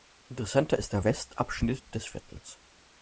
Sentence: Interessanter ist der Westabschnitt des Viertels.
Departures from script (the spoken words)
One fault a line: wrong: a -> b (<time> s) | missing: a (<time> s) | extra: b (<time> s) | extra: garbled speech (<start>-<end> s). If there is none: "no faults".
no faults